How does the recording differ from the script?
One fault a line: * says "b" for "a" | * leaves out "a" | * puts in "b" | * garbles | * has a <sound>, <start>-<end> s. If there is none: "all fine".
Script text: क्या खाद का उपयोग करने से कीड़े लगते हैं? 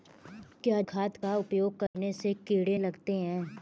* has a dropout, 1.9-1.9 s